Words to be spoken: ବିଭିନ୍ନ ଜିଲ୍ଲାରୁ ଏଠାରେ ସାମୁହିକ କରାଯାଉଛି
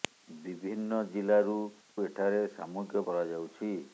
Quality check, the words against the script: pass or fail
pass